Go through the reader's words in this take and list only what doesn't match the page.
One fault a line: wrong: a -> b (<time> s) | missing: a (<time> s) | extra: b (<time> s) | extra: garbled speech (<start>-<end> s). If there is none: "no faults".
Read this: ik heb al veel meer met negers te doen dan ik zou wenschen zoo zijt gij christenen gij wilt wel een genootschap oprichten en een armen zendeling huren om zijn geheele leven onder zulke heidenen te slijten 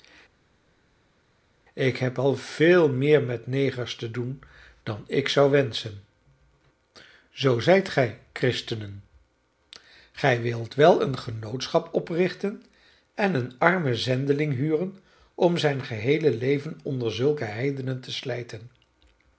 no faults